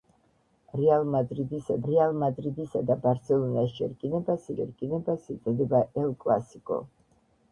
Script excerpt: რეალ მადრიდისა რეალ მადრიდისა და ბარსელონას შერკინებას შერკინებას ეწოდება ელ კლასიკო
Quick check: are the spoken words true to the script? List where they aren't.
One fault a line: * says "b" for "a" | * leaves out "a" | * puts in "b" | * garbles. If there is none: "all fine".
all fine